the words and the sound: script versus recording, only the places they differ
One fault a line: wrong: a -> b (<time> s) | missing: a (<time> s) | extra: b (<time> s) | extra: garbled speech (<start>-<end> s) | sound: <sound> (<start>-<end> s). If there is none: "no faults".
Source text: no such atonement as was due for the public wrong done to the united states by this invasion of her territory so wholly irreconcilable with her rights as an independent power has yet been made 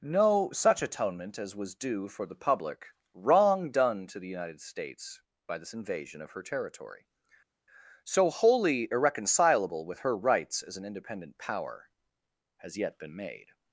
no faults